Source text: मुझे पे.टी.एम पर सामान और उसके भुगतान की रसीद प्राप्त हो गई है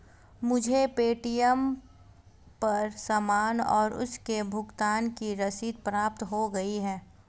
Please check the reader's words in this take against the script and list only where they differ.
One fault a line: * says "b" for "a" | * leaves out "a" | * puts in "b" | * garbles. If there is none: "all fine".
all fine